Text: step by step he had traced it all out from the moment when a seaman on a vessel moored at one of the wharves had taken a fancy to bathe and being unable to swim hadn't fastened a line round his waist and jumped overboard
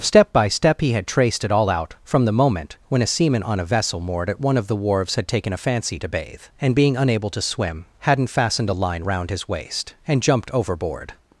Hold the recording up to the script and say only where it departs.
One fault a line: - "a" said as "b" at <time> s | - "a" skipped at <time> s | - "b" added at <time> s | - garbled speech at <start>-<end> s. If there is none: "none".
none